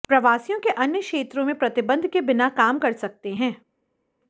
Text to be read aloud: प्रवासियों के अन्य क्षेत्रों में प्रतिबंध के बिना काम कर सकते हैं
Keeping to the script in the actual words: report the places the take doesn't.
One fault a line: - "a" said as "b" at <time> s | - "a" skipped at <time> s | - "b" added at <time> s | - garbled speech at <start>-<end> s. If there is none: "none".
none